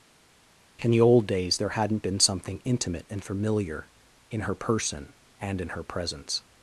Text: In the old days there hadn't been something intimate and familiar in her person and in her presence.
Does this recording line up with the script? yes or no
yes